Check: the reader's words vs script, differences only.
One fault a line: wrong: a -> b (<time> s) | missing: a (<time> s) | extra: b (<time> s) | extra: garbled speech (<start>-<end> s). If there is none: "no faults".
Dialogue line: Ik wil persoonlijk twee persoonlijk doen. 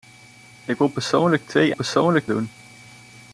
no faults